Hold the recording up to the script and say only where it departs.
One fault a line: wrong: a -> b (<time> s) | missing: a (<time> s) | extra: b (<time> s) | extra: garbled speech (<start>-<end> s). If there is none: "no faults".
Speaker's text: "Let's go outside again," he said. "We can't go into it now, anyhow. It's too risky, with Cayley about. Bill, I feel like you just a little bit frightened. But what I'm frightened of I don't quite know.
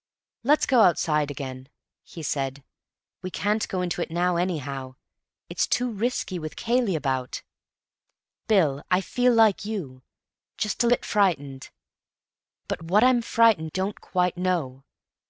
missing: little (10.9 s)
missing: of I (13.7 s)